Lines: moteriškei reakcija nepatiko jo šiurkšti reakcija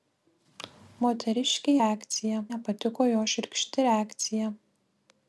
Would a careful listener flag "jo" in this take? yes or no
no